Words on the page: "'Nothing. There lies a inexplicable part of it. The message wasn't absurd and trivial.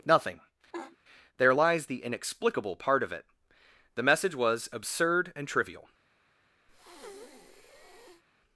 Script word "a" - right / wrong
wrong